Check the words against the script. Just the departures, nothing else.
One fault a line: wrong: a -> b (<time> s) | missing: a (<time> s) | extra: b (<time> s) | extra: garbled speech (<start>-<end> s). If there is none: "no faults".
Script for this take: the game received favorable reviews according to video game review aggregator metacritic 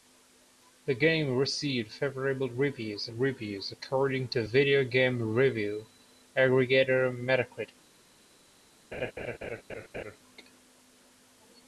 extra: reviews (3.1 s)